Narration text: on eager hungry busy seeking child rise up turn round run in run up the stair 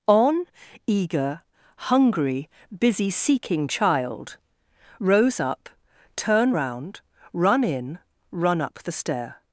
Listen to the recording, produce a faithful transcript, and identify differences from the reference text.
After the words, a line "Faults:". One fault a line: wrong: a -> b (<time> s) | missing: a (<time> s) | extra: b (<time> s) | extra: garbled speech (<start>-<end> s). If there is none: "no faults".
on eager hungry busy seeking child rose up turn round run in run up the stair
Faults:
wrong: rise -> rose (5.0 s)